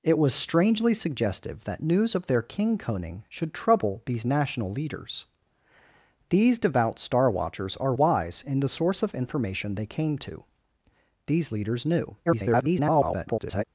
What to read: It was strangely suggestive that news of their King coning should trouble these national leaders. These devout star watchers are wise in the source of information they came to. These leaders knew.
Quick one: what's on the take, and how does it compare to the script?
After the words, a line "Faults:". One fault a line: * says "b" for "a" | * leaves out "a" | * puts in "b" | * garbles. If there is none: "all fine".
It was strangely suggestive that news of their King coning should trouble these national leaders. These devout star watchers are wise in the source of information they came to. These leaders knew. [garbled]
Faults:
* garbles